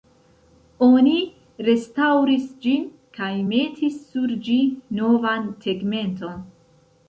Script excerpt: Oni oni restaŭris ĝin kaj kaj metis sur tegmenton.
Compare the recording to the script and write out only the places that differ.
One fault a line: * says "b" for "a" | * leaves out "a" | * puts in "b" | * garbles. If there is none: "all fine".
* leaves out "oni"
* leaves out "kaj"
* puts in "ĝi novan"